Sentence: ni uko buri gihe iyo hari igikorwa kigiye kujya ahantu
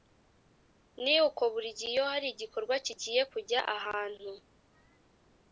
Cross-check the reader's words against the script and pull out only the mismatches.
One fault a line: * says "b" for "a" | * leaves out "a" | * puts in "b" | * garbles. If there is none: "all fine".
all fine